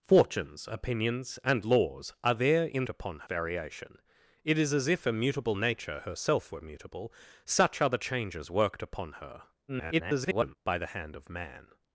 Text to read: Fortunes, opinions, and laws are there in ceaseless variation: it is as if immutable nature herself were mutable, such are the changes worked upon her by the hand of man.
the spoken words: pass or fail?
fail